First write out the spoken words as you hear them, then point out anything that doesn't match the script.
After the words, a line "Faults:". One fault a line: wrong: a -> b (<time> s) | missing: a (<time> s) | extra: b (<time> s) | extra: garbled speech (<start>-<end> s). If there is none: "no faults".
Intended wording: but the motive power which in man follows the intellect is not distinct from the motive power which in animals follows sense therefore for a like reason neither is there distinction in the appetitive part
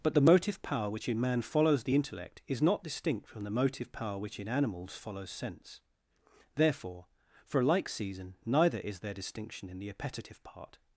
but the motive power which in man follows the intellect is not distinct from the motive power which in animals follows sense therefore for a like season neither is there distinction in the appetitive part
Faults:
wrong: reason -> season (7.9 s)